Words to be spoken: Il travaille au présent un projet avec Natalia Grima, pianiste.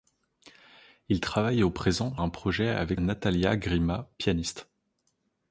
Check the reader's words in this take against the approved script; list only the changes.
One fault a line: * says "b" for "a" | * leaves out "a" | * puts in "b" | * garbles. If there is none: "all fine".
all fine